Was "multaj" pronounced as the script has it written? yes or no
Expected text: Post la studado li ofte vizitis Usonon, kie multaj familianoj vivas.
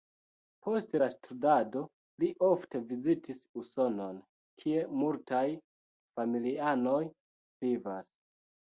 yes